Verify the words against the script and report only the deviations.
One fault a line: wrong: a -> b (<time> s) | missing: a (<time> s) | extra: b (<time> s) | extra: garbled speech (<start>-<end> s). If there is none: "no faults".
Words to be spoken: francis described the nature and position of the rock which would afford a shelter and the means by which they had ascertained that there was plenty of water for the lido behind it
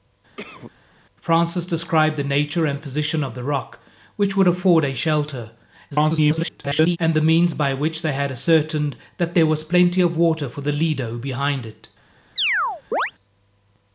extra: garbled speech (5.9-7.0 s)